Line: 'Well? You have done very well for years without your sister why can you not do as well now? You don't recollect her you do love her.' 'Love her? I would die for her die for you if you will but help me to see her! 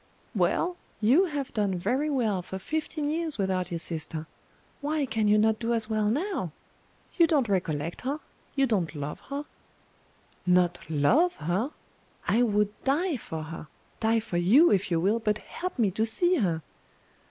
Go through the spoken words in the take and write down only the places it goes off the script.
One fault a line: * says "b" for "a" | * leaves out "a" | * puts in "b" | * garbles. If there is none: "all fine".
* puts in "fifteen"
* says "don't" for "do"
* puts in "Not"